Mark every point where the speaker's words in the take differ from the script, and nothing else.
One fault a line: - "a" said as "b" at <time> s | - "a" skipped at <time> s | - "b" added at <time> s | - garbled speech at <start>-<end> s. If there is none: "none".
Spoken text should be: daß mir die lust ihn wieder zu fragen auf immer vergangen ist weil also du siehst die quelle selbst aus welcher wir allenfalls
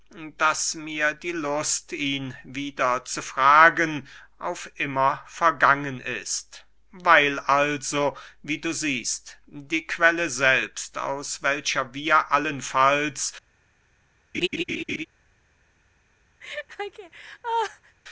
- "wie" added at 8.4 s